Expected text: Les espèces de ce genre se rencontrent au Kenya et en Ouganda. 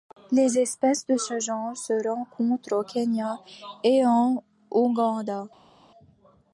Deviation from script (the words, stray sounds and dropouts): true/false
false